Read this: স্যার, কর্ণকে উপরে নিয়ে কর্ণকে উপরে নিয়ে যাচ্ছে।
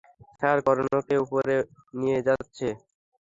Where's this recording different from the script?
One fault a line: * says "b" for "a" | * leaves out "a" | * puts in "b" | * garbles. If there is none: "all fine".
* leaves out "কর্ণকে উপরে নিয়ে"